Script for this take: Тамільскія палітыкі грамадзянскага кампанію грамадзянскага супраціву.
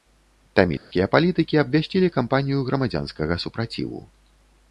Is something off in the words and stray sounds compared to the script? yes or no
yes